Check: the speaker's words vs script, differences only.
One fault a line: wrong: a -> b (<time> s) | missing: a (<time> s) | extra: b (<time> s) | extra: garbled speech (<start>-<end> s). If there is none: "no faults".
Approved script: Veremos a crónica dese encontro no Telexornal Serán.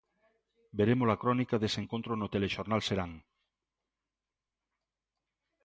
no faults